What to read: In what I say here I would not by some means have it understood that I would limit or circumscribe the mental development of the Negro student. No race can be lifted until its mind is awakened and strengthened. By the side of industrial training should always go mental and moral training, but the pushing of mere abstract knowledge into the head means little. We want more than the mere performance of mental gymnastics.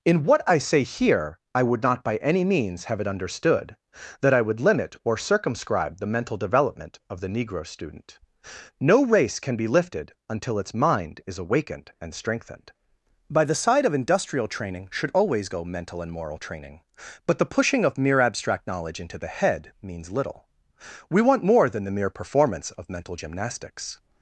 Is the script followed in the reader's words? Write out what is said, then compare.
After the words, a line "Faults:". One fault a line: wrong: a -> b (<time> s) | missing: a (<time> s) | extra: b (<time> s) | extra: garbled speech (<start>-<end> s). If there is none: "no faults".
In what I say here I would not by any means have it understood that I would limit or circumscribe the mental development of the Negro student. No race can be lifted until its mind is awakened and strengthened. By the side of industrial training should always go mental and moral training, but the pushing of mere abstract knowledge into the head means little. We want more than the mere performance of mental gymnastics.
Faults:
wrong: some -> any (2.2 s)